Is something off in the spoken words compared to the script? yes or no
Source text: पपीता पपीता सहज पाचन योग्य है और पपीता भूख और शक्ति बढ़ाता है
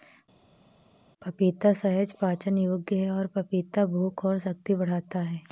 yes